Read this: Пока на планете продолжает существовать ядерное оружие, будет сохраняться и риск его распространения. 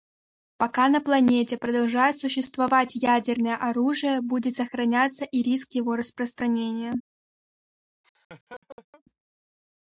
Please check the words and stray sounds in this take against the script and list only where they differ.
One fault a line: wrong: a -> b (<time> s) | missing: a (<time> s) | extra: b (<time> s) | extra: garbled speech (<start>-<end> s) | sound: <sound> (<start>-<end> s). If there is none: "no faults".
sound: laugh (8.0-9.0 s)